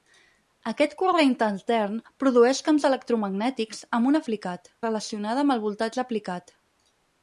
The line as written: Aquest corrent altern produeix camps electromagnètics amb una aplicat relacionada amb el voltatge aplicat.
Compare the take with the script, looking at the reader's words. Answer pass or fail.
pass